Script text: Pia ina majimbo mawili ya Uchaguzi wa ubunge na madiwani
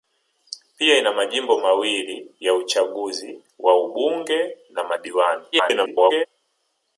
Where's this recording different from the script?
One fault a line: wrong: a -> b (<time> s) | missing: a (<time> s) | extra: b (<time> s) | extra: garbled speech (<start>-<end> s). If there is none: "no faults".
extra: garbled speech (5.5-6.3 s)